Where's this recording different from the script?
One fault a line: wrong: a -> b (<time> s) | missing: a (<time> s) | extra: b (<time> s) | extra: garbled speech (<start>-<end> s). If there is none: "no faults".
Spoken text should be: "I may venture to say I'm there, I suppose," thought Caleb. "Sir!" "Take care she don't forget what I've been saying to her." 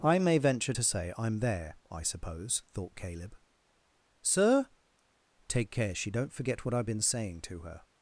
no faults